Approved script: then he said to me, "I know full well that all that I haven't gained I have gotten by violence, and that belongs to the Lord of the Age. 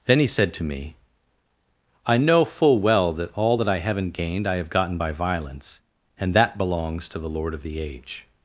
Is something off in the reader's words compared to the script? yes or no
no